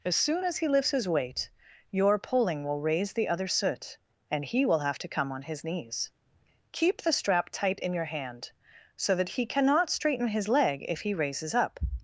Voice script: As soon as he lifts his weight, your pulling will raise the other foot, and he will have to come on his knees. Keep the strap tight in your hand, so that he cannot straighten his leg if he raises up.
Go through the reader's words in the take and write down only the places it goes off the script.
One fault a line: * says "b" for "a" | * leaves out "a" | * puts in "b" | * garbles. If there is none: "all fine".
* says "soot" for "foot"